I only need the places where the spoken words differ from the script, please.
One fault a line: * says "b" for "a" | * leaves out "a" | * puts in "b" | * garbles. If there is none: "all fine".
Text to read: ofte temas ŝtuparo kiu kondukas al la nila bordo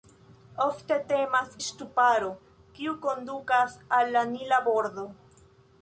all fine